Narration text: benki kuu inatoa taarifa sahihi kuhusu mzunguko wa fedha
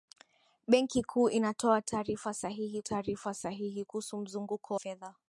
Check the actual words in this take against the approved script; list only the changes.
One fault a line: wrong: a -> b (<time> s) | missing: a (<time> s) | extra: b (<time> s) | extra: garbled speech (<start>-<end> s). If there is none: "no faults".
extra: taarifa sahihi (2.8 s)
missing: wa (4.7 s)